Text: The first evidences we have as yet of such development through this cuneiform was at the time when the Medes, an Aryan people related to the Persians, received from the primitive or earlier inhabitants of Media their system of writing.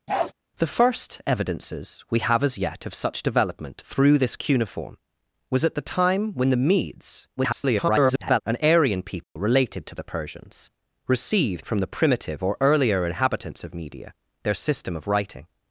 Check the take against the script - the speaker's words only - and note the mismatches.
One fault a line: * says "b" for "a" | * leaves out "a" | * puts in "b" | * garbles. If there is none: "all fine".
* garbles